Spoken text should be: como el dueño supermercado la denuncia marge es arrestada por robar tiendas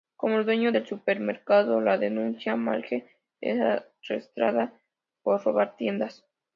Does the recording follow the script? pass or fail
fail